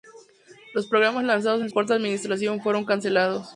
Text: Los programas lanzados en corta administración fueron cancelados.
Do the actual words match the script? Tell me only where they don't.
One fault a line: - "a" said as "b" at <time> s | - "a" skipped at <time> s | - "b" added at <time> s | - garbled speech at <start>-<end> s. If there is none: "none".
none